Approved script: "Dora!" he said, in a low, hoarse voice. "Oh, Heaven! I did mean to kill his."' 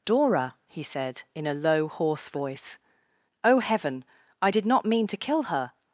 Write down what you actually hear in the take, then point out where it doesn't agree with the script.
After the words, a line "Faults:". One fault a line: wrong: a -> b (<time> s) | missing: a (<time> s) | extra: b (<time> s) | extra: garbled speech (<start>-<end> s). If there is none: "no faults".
"Dora!" he said, in a low, hoarse voice. "Oh, Heaven! I did not mean to kill her."'
Faults:
extra: not (4.6 s)
wrong: his -> her (5.4 s)